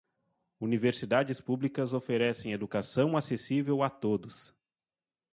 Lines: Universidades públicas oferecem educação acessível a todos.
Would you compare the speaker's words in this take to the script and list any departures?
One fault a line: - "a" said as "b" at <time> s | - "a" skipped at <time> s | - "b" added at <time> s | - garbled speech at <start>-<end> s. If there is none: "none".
none